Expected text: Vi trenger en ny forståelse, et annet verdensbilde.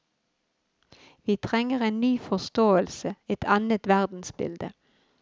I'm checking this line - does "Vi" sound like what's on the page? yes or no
yes